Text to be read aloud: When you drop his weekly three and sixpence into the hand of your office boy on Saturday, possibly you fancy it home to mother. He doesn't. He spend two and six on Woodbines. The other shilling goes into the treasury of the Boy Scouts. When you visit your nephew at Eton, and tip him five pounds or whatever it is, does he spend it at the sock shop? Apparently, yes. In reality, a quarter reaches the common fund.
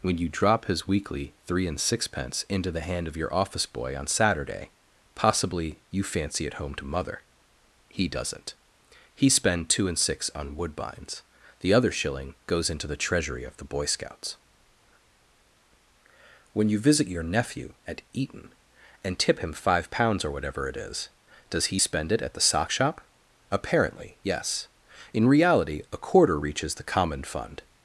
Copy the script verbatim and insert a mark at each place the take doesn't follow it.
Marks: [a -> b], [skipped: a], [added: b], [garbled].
When you drop his weekly three and sixpence into the hand of your office boy on Saturday, possibly you fancy it home to mother. He doesn't. He spend two and six on Woodbines. The other shilling goes into the treasury of the Boy Scouts. When you visit your nephew at Eton, and tip him five pounds or whatever it is, does he spend it at the sock shop? Apparently, yes. In reality, a quarter reaches the common fund.